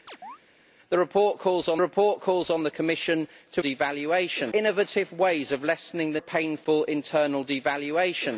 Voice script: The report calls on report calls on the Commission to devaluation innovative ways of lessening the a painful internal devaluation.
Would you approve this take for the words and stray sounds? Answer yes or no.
no